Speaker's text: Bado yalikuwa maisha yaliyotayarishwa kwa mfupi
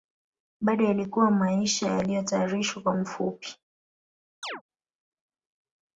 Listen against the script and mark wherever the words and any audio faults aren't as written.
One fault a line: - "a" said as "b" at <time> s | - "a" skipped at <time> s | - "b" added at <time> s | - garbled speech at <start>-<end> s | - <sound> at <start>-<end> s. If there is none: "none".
- chirp at 4.4-4.6 s